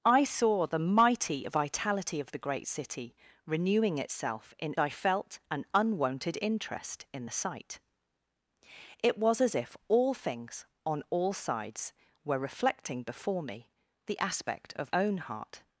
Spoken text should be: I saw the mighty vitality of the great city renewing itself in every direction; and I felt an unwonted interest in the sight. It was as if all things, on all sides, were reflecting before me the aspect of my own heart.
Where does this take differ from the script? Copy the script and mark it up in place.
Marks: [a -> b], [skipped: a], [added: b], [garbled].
I saw the mighty vitality of the great city renewing itself in [skipped: every direction; and] I felt an unwonted interest in the sight. It was as if all things, on all sides, were reflecting before me the aspect of [skipped: my] own heart.